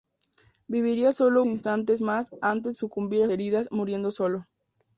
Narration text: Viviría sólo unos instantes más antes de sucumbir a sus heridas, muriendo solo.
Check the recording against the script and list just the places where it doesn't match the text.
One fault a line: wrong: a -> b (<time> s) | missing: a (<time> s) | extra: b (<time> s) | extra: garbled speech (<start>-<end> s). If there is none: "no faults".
missing: unos (1.4 s)
missing: de (2.8 s)
missing: sus (3.3 s)